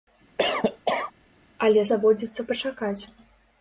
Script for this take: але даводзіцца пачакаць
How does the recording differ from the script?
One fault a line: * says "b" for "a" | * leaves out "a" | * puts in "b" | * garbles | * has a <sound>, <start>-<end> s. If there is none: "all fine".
* has a cough, 0.4-1.1 s